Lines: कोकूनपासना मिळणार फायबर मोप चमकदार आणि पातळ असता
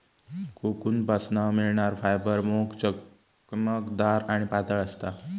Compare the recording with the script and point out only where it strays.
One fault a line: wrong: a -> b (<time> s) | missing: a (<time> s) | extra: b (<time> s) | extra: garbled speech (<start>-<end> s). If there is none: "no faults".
no faults